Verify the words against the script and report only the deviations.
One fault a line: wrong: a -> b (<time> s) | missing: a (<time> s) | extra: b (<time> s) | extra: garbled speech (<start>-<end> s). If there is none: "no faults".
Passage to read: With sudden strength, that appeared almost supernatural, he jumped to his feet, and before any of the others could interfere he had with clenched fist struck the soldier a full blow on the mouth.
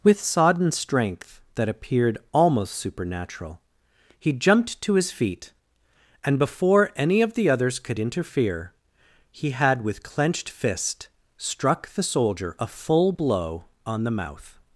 wrong: sudden -> sodden (0.2 s)